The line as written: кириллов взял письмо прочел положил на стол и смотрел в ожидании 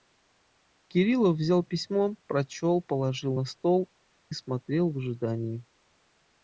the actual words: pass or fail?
pass